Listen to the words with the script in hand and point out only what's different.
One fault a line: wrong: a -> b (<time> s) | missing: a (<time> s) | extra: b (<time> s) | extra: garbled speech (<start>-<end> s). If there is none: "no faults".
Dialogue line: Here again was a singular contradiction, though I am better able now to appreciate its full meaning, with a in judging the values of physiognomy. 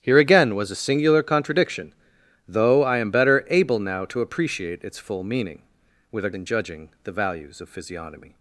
no faults